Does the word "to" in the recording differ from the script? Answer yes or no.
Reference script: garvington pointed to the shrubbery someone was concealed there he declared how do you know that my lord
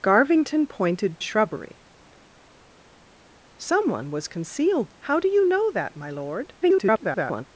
yes